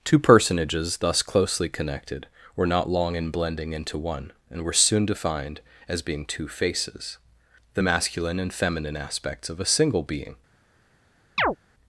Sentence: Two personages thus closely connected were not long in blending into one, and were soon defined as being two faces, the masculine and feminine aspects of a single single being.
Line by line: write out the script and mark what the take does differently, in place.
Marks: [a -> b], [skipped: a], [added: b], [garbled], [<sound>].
Two personages thus closely connected were not long in blending into one, and were soon defined as being two faces, the masculine and feminine aspects of a single [skipped: single] being. [chirp]